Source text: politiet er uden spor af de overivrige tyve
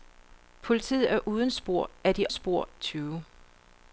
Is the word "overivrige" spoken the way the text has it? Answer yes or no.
no